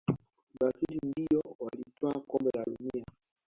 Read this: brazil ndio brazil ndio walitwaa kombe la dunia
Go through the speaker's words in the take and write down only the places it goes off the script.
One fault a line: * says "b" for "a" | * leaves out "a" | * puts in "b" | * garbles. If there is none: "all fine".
* leaves out "brazil ndio"